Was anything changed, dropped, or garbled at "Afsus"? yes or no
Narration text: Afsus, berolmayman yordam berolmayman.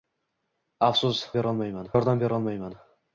no